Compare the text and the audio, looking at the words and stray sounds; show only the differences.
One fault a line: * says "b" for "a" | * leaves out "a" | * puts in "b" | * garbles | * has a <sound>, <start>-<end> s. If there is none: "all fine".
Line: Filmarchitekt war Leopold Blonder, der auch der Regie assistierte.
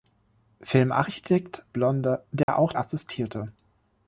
* leaves out "war Leopold"
* has a dropout, 2.4-2.5 s
* leaves out "der Regie"